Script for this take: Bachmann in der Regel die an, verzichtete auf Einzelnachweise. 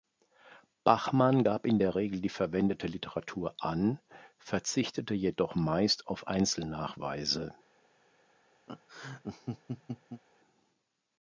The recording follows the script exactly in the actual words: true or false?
false